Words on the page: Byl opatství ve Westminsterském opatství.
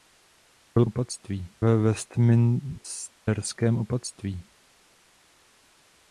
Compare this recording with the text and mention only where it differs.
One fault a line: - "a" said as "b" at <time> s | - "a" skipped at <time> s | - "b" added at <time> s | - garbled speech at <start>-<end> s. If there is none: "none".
none